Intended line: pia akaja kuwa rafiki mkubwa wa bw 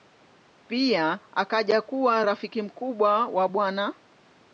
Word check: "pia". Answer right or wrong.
right